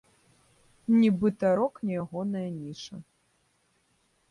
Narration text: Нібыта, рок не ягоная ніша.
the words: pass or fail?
pass